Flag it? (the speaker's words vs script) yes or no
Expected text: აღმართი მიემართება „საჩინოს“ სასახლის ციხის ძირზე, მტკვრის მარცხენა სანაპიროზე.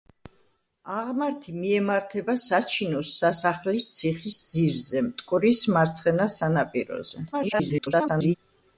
yes